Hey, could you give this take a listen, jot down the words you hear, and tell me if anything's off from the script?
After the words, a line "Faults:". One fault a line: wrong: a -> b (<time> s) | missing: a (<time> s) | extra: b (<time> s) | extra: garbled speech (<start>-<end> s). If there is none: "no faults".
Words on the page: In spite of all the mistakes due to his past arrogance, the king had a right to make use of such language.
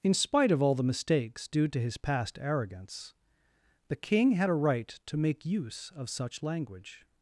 In spite of all the mistakes due to his past arrogance, the king had a right to make use of such language.
Faults:
no faults